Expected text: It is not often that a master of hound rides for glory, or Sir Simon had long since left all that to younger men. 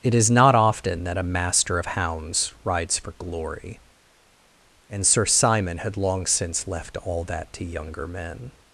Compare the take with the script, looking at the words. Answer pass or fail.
fail